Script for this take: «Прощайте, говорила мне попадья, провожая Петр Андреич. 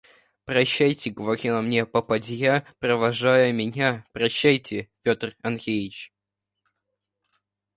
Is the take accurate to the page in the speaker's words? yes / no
no